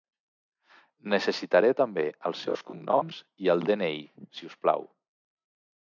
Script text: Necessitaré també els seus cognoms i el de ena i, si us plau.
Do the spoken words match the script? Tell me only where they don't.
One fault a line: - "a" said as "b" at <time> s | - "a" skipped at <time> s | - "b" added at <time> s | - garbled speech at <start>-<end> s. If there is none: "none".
- "el" added at 3.6 s